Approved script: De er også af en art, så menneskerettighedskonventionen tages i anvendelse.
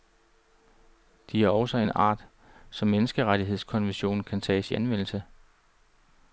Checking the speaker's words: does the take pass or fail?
fail